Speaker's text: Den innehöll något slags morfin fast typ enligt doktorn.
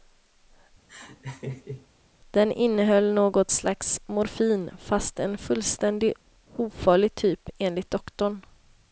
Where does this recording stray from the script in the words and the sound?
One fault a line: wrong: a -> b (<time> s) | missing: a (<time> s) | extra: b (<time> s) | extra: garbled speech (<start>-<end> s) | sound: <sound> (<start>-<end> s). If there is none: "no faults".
sound: laugh (0.9-1.9 s)
extra: en fullständigt ofarlig (5.2 s)